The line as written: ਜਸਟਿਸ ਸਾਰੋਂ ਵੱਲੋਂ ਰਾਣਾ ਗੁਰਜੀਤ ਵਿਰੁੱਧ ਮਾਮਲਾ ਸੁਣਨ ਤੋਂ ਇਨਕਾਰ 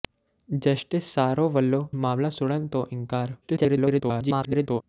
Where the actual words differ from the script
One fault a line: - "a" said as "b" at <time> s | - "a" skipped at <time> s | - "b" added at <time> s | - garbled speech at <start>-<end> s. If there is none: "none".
- "ਰਾਣਾ ਗੁਰਜੀਤ ਵਿਰੁੱਧ" skipped at 1.9 s
- garbled speech at 3.4-4.8 s